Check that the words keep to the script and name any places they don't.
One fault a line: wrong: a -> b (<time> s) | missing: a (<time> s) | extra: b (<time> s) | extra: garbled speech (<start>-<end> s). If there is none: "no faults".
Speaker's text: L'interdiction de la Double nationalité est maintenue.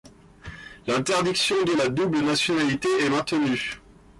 no faults